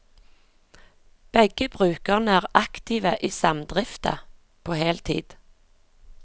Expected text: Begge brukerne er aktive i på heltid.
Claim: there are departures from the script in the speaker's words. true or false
true